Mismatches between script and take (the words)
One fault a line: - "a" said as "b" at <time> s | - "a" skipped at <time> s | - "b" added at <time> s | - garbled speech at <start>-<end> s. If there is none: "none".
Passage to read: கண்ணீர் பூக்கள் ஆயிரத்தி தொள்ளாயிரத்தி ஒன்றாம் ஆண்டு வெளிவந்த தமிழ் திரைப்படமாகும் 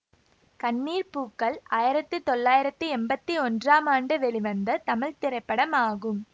- "எம்பத்தி" added at 3.0 s